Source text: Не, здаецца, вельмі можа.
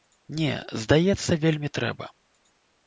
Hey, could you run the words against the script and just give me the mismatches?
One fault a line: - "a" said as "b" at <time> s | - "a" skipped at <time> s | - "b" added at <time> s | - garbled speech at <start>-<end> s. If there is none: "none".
- "можа" said as "трэба" at 1.8 s